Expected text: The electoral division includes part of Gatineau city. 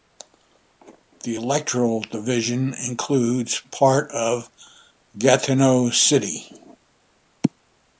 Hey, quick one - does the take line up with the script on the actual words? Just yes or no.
yes